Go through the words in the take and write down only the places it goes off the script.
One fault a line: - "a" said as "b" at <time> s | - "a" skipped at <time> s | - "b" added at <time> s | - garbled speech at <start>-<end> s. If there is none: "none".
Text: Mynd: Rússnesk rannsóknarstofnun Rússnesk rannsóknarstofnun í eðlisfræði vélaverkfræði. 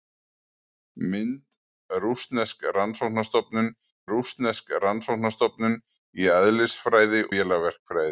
none